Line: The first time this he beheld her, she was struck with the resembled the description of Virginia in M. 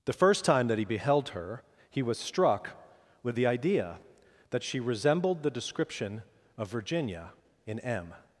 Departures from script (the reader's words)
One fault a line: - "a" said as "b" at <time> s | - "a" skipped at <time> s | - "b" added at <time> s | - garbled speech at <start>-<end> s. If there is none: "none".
- "this" said as "that" at 0.7 s
- "she" said as "he" at 1.9 s
- "idea that she" added at 3.5 s